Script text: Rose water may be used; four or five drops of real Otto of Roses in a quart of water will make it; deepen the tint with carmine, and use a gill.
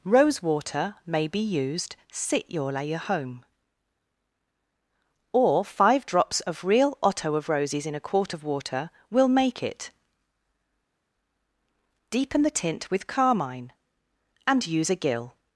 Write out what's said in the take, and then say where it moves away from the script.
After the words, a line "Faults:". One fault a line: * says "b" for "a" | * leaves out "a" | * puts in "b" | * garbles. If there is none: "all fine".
Rose water may be used; sit your layer home or five drops of real Otto of Roses in a quart of water will make it; deepen the tint with carmine, and use a gill.
Faults:
* says "sit your layer home" for "four"